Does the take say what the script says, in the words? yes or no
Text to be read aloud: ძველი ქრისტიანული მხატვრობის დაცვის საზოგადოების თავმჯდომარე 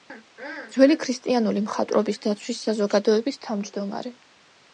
yes